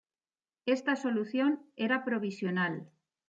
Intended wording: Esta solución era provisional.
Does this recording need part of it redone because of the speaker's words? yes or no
no